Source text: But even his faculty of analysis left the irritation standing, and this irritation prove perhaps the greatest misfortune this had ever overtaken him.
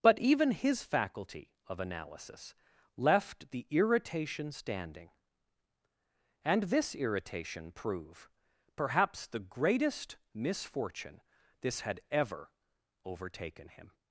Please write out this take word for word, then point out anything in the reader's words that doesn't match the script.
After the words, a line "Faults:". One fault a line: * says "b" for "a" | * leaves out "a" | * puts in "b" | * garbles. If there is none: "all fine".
But even his faculty of analysis left the irritation standing, and this irritation prove perhaps the greatest misfortune this had ever overtaken him.
Faults:
all fine